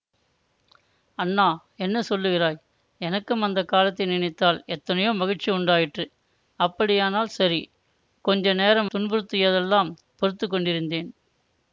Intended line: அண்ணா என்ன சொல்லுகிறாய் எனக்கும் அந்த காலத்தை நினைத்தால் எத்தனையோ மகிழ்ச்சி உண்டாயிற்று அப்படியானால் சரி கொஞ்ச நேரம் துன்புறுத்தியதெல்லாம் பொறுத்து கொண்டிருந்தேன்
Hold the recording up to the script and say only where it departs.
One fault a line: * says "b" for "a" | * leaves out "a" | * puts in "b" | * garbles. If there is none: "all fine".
all fine